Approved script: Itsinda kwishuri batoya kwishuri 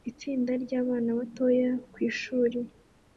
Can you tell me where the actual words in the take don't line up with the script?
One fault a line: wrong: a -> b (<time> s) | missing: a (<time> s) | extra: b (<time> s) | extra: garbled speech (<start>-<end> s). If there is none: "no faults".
wrong: kwishuri -> ryabana (0.6 s)